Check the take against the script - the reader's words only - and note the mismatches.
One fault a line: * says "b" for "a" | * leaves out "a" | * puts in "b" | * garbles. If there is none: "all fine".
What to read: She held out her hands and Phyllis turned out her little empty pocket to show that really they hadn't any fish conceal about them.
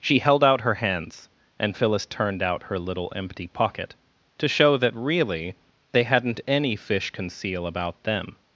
all fine